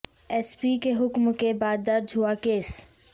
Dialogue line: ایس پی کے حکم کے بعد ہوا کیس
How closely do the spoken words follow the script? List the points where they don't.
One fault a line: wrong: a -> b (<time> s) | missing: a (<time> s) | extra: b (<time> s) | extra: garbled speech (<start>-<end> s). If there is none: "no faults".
extra: درج (1.9 s)